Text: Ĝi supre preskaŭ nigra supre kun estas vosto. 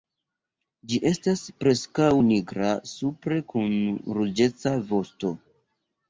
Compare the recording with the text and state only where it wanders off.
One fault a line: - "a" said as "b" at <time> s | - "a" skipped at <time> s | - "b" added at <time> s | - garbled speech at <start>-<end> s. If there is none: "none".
- "supre" said as "estas" at 1.1 s
- "estas" said as "ruĝeca" at 4.2 s